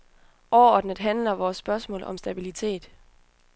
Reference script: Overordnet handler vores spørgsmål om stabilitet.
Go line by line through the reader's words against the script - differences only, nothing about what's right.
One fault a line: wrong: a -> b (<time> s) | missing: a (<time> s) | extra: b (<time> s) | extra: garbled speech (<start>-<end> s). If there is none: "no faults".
no faults